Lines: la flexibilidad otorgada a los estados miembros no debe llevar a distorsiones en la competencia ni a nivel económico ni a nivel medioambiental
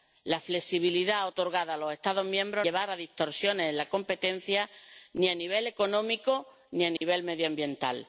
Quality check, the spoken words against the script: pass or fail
fail